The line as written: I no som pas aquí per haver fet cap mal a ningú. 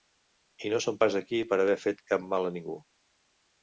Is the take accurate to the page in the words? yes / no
yes